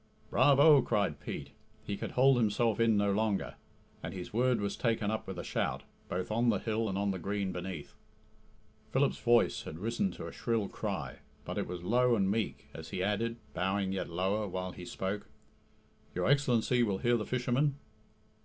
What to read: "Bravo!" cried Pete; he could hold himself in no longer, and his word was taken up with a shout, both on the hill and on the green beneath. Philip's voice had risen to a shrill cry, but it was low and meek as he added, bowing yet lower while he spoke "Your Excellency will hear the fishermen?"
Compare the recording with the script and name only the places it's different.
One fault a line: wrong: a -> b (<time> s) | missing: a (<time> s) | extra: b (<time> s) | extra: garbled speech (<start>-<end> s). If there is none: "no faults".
no faults